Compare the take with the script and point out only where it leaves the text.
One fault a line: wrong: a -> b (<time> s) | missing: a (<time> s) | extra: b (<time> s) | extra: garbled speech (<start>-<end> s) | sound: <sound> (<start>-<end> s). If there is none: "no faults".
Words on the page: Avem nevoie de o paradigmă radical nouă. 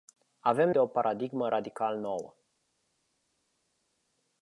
missing: nevoie (0.7 s)